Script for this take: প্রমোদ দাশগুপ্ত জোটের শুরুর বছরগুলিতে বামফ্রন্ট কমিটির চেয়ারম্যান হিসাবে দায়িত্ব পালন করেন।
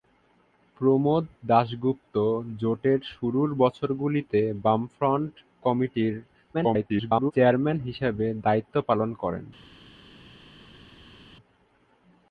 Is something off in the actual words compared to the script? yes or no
yes